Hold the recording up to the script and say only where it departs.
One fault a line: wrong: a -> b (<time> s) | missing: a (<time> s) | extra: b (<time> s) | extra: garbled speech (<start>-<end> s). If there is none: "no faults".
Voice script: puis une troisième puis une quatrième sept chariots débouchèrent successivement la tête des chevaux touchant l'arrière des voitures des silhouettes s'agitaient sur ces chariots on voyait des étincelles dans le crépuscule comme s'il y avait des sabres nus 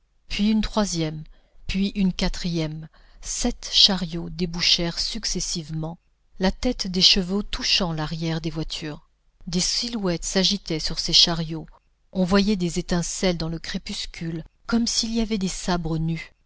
no faults